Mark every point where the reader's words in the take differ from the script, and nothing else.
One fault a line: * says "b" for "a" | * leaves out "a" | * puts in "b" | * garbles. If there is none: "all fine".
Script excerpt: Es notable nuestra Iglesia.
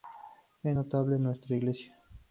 all fine